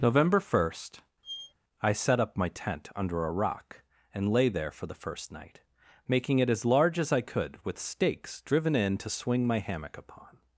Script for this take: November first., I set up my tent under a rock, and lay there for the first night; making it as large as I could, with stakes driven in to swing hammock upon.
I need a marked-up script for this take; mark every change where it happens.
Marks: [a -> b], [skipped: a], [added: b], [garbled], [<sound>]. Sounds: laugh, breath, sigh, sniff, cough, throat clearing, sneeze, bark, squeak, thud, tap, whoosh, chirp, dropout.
November first., [squeak] I set up my tent under a rock, and lay there for the first night; making it as large as I could, with stakes driven in to swing [added: my] hammock upon.